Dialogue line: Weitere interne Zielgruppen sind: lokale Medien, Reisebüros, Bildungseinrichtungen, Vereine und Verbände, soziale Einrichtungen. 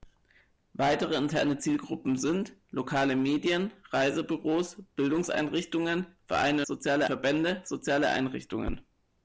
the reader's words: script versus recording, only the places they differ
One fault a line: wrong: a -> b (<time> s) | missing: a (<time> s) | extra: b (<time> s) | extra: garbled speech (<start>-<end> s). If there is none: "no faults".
wrong: und -> soziale (6.6 s)